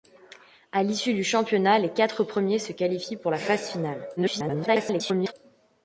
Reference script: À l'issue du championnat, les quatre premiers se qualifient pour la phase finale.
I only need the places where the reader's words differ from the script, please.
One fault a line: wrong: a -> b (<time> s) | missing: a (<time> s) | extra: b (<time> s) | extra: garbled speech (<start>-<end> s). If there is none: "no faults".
extra: garbled speech (4.2-5.3 s)